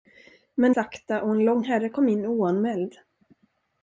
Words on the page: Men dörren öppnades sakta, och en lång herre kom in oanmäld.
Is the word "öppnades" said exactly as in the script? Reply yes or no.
no